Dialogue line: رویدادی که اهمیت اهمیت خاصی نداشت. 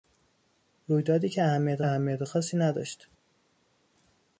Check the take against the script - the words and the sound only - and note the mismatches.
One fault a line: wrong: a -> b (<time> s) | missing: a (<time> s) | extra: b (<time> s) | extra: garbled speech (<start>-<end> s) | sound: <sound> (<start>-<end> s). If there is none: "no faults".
no faults